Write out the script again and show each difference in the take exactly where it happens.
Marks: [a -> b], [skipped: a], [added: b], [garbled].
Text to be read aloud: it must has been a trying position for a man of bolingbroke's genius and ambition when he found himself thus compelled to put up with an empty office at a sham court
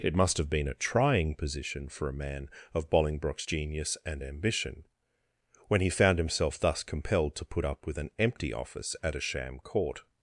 it must [has -> have] been a trying position for a man of bolingbroke's genius and ambition when he found himself thus compelled to put up with an empty office at a sham court